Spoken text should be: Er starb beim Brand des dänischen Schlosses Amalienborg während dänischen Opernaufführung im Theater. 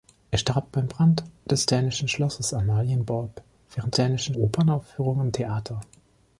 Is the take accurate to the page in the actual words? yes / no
yes